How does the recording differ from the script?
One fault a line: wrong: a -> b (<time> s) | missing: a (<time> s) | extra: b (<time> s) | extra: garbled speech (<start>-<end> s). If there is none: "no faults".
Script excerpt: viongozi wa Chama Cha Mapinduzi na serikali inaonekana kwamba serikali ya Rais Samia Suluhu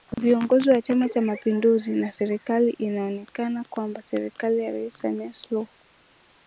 no faults